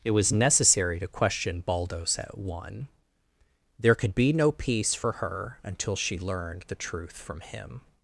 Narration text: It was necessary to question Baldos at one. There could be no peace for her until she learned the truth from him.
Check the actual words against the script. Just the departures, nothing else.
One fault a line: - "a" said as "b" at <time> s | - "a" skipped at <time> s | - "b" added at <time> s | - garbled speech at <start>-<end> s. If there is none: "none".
none